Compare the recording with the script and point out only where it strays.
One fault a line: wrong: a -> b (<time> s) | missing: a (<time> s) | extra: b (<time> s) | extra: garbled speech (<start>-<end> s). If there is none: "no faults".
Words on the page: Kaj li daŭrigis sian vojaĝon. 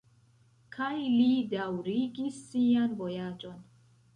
no faults